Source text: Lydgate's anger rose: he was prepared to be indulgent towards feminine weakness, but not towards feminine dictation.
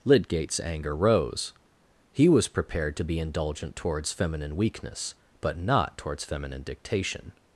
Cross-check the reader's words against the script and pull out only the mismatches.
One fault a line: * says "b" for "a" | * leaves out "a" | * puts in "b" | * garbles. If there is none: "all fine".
all fine